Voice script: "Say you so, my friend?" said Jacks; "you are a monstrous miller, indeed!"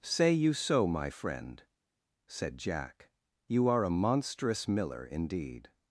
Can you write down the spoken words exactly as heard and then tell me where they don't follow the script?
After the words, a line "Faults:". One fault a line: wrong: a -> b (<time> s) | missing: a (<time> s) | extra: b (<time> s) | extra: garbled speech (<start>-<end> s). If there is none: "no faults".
"Say you so, my friend?" said Jack; "you are a monstrous miller, indeed!"
Faults:
wrong: Jacks -> Jack (2.6 s)